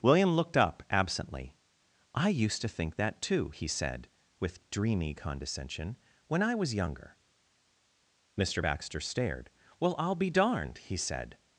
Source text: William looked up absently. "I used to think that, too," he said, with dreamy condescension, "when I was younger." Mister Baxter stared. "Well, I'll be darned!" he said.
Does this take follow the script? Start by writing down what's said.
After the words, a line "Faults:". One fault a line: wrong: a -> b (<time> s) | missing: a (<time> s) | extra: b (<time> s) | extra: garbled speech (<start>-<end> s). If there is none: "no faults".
William looked up absently. "I used to think that, too," he said, with dreamy condescension, "when I was younger." Mister Baxter stared. "Well, I'll be darned!" he said.
Faults:
no faults